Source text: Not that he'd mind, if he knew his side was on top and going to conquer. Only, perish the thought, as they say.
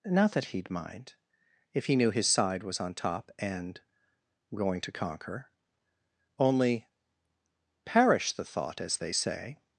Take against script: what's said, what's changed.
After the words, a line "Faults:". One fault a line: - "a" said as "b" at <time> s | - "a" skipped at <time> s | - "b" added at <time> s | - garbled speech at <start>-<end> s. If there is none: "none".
Not that he'd mind, if he knew his side was on top and going to conquer. Only, perish the thought, as they say.
Faults:
none